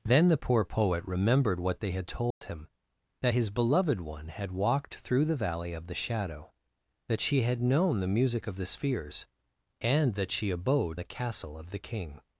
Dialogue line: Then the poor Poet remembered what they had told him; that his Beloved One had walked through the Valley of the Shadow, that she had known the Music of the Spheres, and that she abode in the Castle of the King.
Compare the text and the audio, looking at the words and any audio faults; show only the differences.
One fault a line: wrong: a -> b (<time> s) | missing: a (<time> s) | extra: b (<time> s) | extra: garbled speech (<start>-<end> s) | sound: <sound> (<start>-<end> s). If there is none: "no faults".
sound: dropout (2.3-2.4 s)
missing: in (11.0 s)